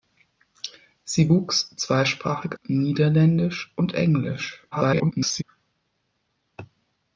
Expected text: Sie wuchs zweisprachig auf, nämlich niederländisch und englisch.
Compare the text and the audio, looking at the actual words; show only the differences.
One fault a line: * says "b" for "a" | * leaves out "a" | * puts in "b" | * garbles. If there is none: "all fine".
* leaves out "auf nämlich"
* garbles